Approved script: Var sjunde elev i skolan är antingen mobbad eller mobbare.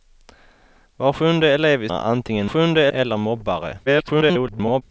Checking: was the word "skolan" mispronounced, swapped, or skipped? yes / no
yes